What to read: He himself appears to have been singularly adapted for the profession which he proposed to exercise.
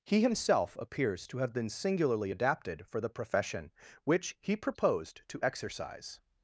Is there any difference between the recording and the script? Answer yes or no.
no